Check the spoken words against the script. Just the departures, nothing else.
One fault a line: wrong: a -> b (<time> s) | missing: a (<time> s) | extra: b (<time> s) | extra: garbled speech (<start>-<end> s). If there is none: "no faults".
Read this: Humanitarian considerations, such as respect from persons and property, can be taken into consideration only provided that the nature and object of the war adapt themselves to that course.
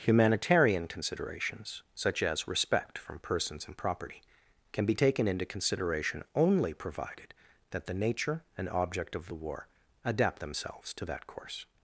no faults